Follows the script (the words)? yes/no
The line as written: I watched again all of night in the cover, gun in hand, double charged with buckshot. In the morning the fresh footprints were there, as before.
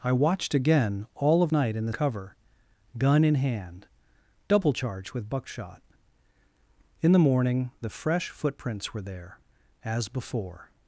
yes